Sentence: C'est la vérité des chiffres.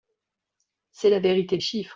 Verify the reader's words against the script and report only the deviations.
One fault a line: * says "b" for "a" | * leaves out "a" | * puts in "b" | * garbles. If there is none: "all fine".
* leaves out "des"